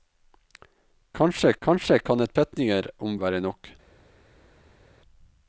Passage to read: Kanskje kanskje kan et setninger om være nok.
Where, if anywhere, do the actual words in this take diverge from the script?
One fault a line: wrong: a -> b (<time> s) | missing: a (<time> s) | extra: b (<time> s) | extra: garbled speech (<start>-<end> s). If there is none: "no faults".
no faults